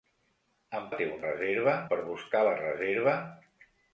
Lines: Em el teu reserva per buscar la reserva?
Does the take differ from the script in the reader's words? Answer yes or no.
no